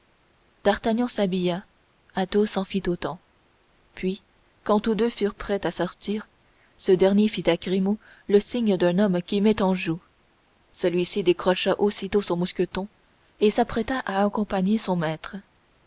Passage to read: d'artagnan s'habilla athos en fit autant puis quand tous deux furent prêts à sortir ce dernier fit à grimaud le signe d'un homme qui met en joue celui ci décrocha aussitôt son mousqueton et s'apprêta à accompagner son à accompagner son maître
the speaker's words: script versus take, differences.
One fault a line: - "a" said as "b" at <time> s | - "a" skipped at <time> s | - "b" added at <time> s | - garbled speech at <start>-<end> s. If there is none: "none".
- "à accompagner son" skipped at 14.9 s